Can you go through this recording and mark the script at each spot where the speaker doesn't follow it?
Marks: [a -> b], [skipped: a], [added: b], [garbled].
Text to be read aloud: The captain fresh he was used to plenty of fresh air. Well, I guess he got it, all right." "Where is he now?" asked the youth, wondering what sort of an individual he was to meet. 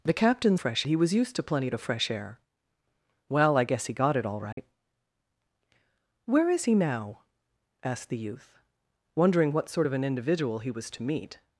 The captain fresh he was used to plenty of fresh air. Well, I guess he got it, all right." "Where is he now?" asked the youth, wondering what sort of an individual he was to meet.